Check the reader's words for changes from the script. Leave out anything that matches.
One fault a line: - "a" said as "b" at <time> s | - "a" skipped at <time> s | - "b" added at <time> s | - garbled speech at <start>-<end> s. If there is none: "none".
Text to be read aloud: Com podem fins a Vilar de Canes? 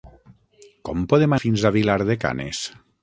none